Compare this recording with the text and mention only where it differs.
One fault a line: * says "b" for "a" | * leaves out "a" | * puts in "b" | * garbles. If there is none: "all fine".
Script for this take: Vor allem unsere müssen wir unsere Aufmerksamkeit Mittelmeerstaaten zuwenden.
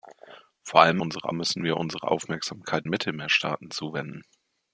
all fine